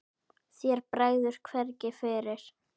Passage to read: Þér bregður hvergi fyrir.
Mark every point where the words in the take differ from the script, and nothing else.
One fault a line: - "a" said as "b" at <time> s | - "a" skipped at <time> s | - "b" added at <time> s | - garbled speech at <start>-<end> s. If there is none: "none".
none